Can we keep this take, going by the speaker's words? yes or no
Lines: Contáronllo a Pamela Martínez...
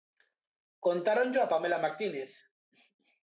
yes